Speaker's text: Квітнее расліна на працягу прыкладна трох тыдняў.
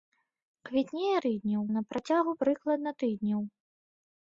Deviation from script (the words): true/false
true